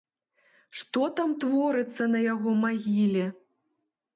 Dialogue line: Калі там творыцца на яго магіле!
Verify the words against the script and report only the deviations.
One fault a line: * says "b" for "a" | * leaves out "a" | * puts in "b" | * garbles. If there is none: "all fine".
* says "Што" for "Калі"